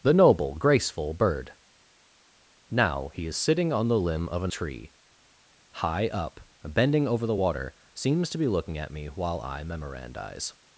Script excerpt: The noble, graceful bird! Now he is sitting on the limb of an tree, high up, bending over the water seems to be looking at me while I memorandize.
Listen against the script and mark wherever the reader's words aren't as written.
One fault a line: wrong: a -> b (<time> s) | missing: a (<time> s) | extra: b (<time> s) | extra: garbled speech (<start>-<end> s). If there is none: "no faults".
no faults